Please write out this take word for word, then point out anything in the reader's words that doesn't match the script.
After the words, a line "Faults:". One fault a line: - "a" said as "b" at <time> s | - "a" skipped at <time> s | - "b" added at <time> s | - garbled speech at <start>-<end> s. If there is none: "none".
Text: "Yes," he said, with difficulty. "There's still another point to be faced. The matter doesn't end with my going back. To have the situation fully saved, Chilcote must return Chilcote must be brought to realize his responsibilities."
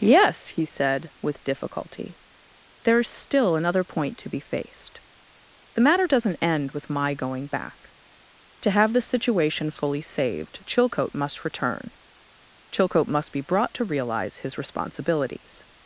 "Yes," he said, with difficulty. "There's still another point to be faced. The matter doesn't end with my going back. To have the situation fully saved, Chilcote must return Chilcote must be brought to realize his responsibilities."
Faults:
none